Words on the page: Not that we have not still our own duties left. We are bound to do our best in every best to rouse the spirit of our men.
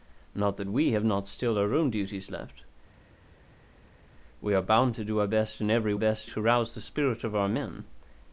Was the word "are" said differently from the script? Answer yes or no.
no